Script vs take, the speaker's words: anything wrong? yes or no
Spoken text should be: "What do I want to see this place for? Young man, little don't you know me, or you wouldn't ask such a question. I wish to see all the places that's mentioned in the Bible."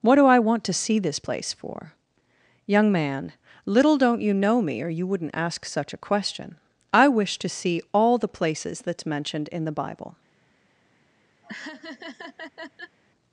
no